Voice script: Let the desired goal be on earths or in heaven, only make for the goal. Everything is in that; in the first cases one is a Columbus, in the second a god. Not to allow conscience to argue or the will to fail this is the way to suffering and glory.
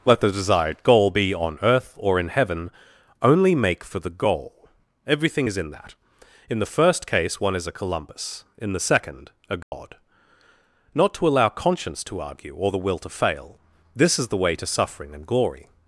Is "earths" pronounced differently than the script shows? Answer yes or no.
yes